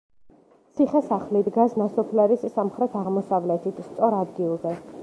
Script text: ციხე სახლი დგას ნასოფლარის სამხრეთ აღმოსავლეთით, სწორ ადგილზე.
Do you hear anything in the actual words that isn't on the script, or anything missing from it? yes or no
no